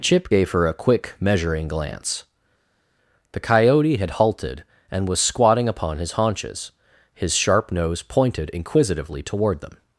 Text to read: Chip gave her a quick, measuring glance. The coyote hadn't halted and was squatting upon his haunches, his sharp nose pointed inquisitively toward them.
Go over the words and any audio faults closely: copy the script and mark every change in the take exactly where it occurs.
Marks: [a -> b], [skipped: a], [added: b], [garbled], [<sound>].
Chip gave her a quick, measuring glance. The coyote [hadn't -> had] halted and was squatting upon his haunches, his sharp nose pointed inquisitively toward them.